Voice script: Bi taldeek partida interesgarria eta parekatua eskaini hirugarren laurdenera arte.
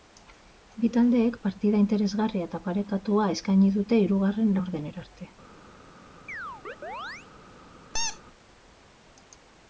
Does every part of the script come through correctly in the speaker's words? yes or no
no